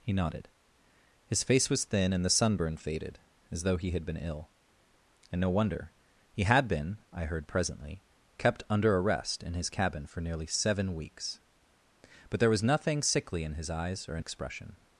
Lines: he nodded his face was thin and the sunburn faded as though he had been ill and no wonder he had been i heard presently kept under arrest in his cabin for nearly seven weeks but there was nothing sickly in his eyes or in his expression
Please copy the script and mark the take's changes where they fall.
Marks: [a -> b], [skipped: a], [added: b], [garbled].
he nodded his face was thin and the sunburn faded as though he had been ill and no wonder he had been i heard presently kept under arrest in his cabin for nearly seven weeks but there was nothing sickly in his eyes or in [skipped: his] expression